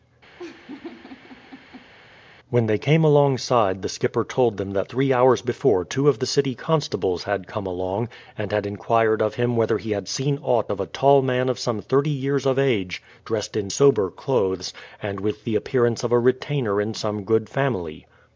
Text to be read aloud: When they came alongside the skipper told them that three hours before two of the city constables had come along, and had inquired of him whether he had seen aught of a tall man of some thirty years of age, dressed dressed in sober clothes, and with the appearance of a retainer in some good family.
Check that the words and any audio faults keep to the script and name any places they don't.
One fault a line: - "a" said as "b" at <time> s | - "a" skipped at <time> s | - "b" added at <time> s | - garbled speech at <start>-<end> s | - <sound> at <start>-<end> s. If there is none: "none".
- laugh at 0.4-1.9 s
- "dressed" skipped at 13.5 s